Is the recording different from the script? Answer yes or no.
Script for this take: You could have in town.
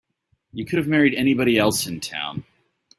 yes